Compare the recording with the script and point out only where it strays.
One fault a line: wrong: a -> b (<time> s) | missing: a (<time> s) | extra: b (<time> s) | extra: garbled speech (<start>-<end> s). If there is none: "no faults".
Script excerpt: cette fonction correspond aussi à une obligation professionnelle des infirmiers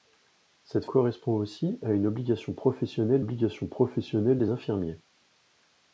missing: fonction (0.8 s)
extra: obligation professionnelle (3.2 s)